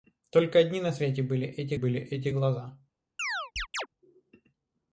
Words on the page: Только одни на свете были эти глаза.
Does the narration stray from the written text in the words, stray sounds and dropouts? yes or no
yes